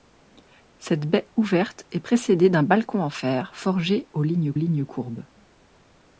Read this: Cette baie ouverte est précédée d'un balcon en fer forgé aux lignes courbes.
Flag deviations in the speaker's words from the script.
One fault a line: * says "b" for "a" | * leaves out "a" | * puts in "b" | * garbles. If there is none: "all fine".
* puts in "lignes"